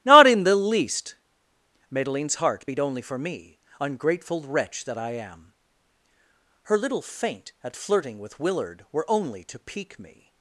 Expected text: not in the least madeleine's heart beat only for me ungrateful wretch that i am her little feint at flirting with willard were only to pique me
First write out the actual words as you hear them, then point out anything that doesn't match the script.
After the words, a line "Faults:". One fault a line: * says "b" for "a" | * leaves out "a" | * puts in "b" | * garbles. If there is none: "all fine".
not in the least madeleine's heart beat only for me ungrateful wretch that i am her little feint at flirting with willard were only to pique me
Faults:
all fine